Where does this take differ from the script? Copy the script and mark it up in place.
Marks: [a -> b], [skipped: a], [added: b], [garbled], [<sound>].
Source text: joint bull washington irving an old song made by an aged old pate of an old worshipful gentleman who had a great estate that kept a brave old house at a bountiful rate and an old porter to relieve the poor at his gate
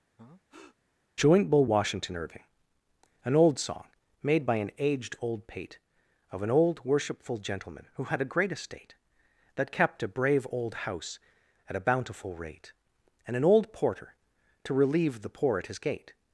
[breath] joint bull washington irving an old song made by an aged old pate of an old worshipful gentleman who had a great estate that kept a brave old house at a bountiful rate and an old porter to relieve the poor at his gate